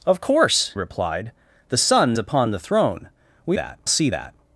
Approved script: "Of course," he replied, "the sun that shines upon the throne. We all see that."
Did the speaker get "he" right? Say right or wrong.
wrong